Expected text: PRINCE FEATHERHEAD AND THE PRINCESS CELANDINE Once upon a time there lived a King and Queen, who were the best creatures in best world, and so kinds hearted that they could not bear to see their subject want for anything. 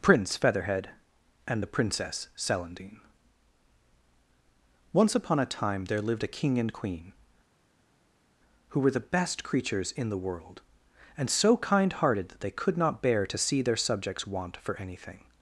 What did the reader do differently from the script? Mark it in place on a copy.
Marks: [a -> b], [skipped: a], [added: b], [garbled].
PRINCE FEATHERHEAD AND THE PRINCESS CELANDINE Once upon a time there lived a King and Queen, who were the best creatures in [best -> the] world, and so [kinds -> kind] hearted that they could not bear to see their [subject -> subjects] want for anything.